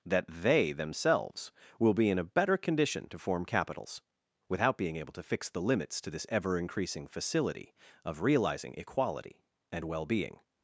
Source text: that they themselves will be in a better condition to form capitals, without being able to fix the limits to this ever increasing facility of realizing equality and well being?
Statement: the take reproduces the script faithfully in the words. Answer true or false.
true